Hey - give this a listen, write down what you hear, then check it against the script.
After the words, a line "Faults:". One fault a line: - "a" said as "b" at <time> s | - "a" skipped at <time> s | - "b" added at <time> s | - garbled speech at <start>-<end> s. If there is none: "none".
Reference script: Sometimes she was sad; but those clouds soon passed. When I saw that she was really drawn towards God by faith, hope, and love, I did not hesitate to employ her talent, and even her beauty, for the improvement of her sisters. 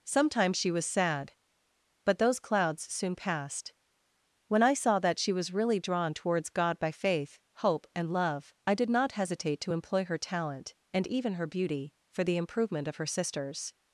Sometimes she was sad; but those clouds soon passed. When I saw that she was really drawn towards God by faith, hope, and love, I did not hesitate to employ her talent, and even her beauty, for the improvement of her sisters.
Faults:
none